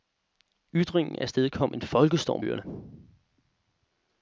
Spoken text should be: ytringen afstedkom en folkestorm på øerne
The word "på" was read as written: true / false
false